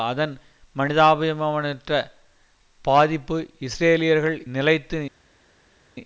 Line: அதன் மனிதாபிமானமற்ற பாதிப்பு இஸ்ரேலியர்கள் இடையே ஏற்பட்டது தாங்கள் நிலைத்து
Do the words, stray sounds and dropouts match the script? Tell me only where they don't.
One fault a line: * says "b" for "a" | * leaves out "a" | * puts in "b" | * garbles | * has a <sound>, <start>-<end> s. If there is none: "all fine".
* leaves out "இடையே ஏற்பட்டது தாங்கள்"